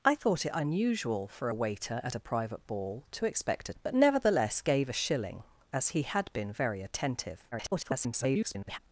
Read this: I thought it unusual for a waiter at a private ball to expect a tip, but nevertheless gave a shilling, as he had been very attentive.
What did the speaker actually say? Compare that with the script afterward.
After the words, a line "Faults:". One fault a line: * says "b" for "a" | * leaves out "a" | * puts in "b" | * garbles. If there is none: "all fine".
I thought it unusual for a waiter at a private ball to expect a but nevertheless gave a shilling, as he had been very attentive. [garbled]
Faults:
* leaves out "tip"
* garbles